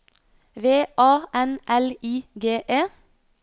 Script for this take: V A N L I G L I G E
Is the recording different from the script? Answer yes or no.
yes